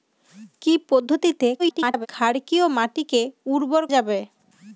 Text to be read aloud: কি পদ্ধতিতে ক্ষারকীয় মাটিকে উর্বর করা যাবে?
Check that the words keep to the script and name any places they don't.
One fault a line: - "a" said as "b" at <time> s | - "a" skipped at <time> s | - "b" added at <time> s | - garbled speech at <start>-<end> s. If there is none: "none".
- garbled speech at 1.6-2.1 s
- "করা" skipped at 3.8 s